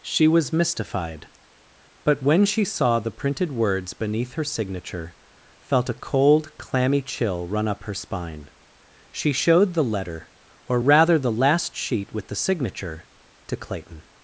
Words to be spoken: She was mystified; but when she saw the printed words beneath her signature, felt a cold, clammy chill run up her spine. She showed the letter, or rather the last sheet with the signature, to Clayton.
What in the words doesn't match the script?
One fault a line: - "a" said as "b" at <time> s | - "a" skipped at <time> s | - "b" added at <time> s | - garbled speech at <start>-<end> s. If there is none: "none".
none